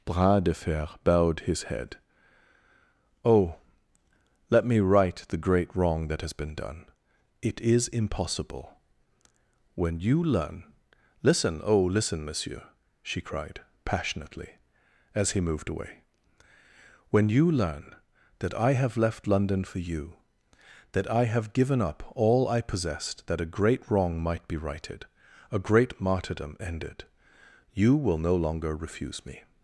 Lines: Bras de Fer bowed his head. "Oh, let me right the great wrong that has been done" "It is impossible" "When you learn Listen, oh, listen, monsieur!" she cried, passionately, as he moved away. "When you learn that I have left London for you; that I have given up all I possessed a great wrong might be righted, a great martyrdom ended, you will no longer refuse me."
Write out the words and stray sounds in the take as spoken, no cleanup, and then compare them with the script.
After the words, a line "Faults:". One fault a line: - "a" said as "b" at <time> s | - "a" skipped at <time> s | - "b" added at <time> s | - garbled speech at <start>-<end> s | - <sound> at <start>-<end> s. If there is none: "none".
Bras de Fer bowed his head. "Oh, let me right the great wrong that has been done" "It is impossible" "When you learn Listen, oh, listen, monsieur!" she cried, passionately, as he moved away. "When you learn that I have left London for you; that I have given up all I possessed that a great wrong might be righted, a great martyrdom ended, you will no longer refuse me."
Faults:
- "that" added at 23.3 s